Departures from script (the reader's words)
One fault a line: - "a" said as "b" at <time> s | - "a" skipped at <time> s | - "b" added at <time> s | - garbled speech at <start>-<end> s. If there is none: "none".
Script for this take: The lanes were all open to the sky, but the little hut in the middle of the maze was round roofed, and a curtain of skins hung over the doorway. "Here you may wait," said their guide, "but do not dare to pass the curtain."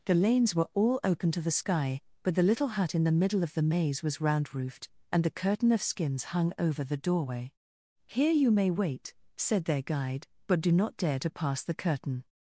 - "a" said as "the" at 5.2 s